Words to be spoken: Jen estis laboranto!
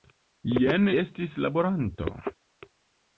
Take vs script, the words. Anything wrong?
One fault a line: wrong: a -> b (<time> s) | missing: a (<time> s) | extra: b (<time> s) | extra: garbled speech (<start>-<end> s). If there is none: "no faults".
no faults